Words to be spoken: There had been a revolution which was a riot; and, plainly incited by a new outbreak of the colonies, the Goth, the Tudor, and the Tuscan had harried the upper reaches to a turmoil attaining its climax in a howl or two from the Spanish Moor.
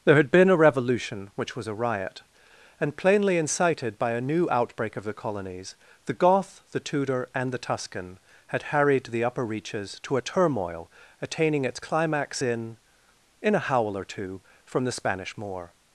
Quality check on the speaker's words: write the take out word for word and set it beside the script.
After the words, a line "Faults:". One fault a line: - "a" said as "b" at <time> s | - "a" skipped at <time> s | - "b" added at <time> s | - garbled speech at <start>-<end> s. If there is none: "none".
There had been a revolution which was a riot; and, plainly incited by a new outbreak of the colonies, the Goth, the Tudor, and the Tuscan had harried the upper reaches to a turmoil attaining its climax in in a howl or two from the Spanish Moor.
Faults:
- "in" added at 13.4 s